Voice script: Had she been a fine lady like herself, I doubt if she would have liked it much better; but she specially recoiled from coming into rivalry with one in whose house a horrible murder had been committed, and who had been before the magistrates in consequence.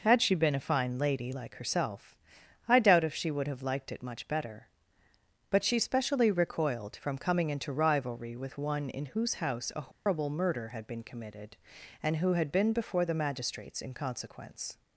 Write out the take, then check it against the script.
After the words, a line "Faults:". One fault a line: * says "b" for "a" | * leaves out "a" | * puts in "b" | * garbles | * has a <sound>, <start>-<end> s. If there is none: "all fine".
Had she been a fine lady like herself, I doubt if she would have liked it much better; but she specially recoiled from coming into rivalry with one in whose house a horrible murder had been committed, and who had been before the magistrates in consequence.
Faults:
* has a dropout, 9.9-10.1 s